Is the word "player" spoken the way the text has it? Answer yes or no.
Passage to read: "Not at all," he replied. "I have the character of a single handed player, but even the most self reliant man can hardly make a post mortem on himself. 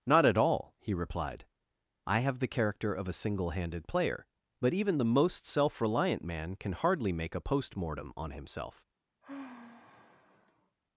yes